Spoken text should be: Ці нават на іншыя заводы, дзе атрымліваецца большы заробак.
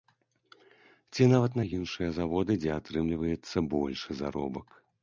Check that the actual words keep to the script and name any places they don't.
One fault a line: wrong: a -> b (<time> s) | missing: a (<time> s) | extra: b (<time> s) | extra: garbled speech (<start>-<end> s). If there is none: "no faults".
no faults